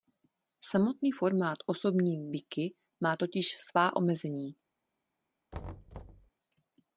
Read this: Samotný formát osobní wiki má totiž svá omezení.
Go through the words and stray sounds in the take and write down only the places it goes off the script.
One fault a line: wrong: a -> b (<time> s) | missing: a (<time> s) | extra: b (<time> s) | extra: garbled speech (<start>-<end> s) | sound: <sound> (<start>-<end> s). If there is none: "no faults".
sound: thud (5.5-6.3 s)